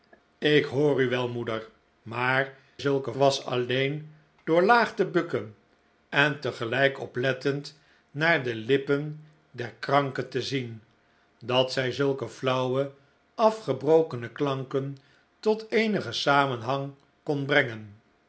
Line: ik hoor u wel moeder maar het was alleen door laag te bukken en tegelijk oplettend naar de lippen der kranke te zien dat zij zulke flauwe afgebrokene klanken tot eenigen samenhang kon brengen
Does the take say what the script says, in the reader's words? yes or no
no